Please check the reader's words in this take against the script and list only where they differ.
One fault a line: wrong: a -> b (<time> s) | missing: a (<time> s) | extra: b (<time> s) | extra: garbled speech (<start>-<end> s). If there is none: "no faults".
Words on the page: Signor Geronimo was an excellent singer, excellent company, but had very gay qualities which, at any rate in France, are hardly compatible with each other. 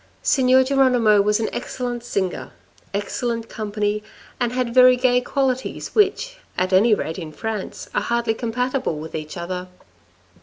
wrong: but -> and (4.4 s)